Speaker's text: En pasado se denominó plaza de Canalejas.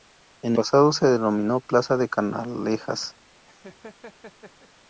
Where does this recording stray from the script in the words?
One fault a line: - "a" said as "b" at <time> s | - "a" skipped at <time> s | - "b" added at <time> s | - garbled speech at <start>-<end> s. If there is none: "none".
none